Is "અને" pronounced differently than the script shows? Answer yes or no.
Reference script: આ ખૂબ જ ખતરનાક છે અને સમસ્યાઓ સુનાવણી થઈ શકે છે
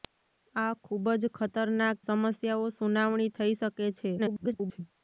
yes